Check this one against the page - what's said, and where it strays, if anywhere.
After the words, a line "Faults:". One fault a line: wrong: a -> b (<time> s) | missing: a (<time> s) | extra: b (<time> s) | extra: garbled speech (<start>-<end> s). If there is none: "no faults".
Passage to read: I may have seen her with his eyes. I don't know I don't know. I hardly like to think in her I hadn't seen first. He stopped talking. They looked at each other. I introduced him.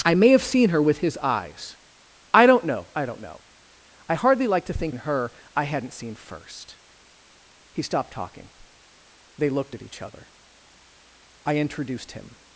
I may have seen her with his eyes. I don't know I don't know. I hardly like to think in her I hadn't seen first. He stopped talking. They looked at each other. I introduced him.
Faults:
no faults